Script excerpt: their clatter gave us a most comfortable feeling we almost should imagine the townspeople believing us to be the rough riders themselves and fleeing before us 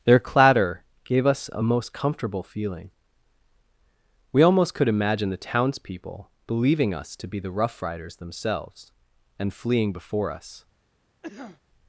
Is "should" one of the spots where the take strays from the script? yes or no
yes